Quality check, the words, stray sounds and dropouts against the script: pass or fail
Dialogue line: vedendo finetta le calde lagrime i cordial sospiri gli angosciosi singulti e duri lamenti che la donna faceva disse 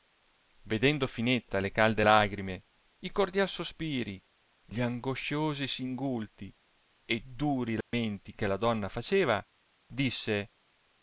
fail